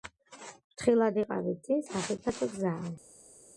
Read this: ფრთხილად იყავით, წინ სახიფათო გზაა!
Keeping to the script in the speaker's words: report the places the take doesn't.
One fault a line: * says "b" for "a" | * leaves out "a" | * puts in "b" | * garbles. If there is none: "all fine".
all fine